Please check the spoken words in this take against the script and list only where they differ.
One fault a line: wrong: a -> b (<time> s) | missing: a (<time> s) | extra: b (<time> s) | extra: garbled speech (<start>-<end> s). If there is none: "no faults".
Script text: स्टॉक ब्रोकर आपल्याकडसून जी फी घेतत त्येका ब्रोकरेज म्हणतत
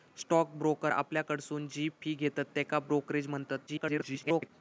extra: garbled speech (3.7-4.5 s)